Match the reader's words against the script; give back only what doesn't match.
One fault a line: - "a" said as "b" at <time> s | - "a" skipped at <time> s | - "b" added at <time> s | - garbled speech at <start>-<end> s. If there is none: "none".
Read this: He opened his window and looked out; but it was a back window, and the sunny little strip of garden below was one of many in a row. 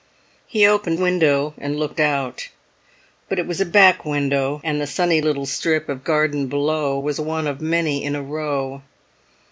- "his" skipped at 1.0 s